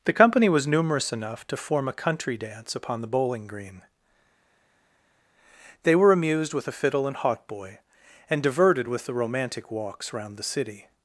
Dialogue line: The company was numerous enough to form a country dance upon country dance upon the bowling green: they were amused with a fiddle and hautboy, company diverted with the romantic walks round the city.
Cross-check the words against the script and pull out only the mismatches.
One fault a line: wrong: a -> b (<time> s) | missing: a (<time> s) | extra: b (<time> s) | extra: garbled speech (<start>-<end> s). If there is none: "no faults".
missing: country dance upon (3.0 s)
wrong: company -> and (8.3 s)